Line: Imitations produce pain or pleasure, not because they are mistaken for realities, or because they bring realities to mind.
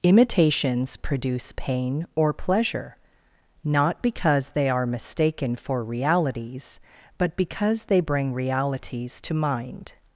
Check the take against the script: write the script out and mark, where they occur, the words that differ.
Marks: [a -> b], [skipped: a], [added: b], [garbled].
Imitations produce pain or pleasure, not because they are mistaken for realities, [or -> but] because they bring realities to mind.